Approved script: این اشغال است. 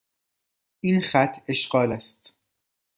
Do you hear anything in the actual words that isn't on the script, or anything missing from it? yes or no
yes